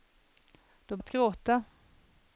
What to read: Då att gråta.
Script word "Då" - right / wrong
right